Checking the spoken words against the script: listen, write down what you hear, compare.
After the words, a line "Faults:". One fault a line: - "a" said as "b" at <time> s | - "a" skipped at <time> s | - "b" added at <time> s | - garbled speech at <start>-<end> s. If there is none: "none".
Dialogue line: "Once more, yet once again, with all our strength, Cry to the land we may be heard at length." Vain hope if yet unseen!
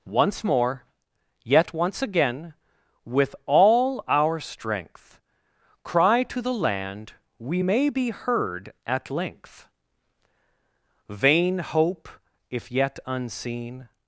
"Once more, yet once again, with all our strength, Cry to the land we may be heard at length." Vain hope if yet unseen!
Faults:
none